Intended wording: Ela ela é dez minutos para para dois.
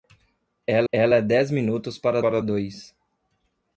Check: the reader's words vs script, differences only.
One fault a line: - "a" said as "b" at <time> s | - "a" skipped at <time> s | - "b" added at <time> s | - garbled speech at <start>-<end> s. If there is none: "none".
none